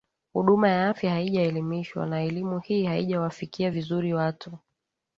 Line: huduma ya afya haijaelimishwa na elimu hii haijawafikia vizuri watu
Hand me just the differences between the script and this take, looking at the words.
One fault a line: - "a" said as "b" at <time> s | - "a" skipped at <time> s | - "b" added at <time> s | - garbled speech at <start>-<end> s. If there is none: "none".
none